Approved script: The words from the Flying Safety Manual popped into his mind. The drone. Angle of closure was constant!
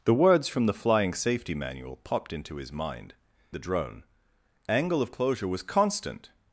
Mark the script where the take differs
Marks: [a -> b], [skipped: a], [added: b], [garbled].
The words from the Flying Safety Manual popped into his mind. The drone. Angle of closure was constant!